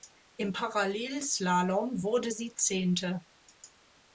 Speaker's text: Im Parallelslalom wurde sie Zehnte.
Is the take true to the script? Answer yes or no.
yes